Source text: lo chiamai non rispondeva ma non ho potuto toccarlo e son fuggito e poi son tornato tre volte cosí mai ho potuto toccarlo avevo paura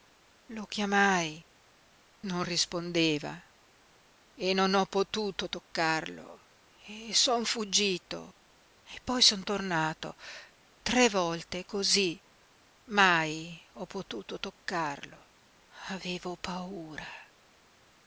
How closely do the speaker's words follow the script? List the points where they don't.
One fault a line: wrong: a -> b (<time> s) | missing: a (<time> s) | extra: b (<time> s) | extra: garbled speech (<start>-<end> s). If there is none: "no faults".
wrong: ma -> e (4.3 s)